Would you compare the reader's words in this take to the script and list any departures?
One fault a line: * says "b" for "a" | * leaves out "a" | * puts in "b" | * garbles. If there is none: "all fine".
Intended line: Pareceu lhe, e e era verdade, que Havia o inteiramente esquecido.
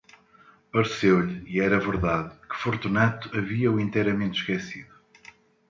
* leaves out "e"
* puts in "Fortunato"